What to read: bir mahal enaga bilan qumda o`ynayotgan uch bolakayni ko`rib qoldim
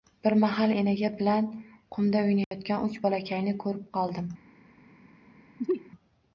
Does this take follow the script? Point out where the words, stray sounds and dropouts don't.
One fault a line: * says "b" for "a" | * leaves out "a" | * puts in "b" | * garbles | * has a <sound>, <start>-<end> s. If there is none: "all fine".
* has a dropout, 2.4-2.5 s
* has a sneeze, 5.6-5.9 s